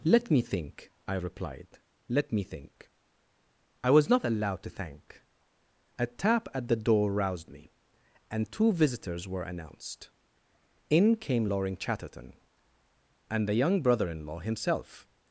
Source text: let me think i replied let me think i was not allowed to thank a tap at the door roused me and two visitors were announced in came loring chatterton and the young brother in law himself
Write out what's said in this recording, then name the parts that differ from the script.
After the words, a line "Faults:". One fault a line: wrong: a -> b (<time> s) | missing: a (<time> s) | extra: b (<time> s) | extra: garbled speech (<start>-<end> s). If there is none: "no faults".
let me think i replied let me think i was not allowed to thank a tap at the door roused me and two visitors were announced in came loring chatterton and the young brother in law himself
Faults:
no faults